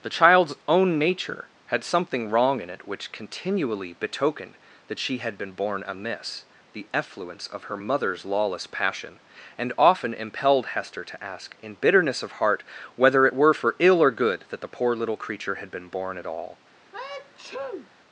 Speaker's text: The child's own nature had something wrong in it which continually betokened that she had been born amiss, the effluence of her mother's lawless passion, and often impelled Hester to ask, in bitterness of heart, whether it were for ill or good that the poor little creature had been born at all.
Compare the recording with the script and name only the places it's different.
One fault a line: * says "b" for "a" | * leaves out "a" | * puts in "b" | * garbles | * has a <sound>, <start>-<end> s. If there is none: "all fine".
* has a sneeze, 16.9-17.9 s